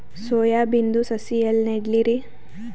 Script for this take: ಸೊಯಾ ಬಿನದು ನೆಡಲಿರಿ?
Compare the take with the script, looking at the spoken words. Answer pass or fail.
fail